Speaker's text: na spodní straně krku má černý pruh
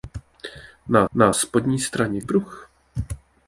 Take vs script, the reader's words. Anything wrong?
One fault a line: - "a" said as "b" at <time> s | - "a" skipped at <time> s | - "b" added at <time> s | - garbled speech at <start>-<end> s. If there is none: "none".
- "na" added at 1.1 s
- "krku má černý" skipped at 2.2 s